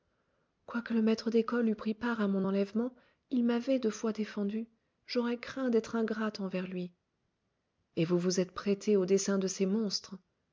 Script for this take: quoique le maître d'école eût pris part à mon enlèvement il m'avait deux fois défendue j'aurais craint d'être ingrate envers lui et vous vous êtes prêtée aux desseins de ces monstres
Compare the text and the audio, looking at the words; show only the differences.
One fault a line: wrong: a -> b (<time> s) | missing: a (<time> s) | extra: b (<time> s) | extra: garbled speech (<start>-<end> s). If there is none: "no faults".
no faults